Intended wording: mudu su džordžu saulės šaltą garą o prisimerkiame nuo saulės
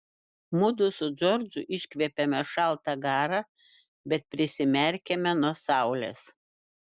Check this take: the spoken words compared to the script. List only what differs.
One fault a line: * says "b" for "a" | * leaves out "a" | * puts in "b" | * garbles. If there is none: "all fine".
* says "iškvepiame" for "saulės"
* says "bet" for "o"